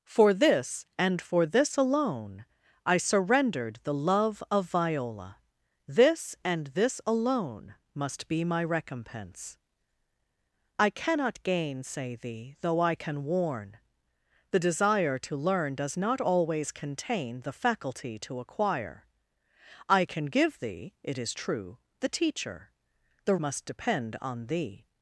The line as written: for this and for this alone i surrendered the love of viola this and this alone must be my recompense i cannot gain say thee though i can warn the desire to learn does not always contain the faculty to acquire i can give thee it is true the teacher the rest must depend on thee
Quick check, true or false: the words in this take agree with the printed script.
false